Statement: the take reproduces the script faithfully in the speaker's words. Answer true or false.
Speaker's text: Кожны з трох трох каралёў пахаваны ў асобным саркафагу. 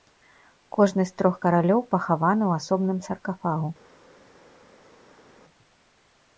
false